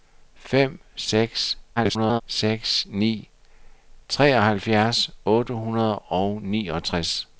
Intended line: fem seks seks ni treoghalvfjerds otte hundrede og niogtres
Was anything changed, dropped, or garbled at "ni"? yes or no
no